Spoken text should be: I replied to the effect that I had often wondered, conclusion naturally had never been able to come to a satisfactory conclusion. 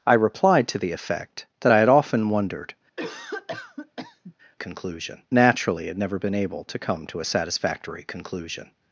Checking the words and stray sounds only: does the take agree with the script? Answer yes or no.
no